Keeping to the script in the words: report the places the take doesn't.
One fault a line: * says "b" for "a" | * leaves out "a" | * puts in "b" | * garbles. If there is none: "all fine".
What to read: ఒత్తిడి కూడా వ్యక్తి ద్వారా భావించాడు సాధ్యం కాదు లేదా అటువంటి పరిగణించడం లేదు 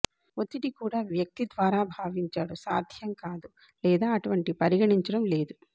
all fine